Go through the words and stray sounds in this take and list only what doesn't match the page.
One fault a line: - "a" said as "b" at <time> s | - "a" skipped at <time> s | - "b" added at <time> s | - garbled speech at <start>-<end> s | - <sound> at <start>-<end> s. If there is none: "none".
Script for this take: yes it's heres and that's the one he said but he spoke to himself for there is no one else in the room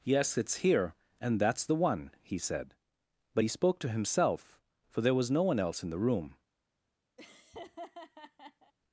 - "heres" said as "here" at 0.7 s
- "is" said as "was" at 5.2 s
- laugh at 7.2-8.7 s